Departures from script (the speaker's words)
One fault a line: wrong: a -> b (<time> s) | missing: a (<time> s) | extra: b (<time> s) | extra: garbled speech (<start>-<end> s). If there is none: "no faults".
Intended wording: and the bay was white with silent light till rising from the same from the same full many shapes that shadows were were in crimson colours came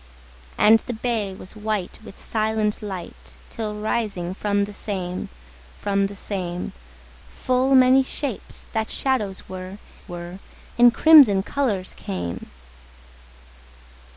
no faults